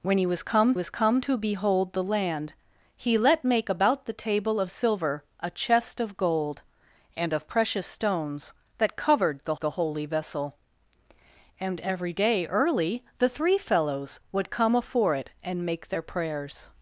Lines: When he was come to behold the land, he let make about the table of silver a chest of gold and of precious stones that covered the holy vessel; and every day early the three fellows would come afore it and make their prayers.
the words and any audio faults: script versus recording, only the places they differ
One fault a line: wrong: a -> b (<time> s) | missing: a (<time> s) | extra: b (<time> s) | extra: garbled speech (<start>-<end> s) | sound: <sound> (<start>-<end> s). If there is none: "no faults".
extra: was come (0.7 s)
extra: the (9.6 s)